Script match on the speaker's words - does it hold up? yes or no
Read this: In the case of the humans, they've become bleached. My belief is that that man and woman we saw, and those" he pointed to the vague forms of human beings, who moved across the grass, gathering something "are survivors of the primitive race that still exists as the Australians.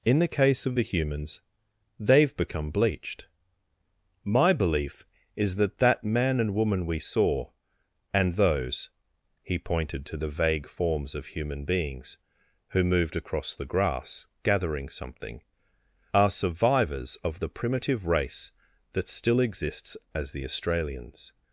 yes